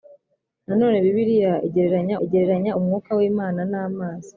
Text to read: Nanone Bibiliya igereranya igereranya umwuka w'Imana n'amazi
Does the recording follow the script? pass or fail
pass